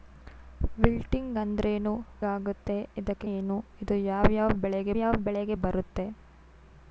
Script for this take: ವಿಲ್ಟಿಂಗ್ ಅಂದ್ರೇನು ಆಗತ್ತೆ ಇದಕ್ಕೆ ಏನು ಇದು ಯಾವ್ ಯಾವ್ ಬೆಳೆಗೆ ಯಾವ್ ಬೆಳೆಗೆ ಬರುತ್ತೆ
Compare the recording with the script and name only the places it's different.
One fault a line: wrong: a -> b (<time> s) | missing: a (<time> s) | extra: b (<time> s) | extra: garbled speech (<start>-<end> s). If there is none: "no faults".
no faults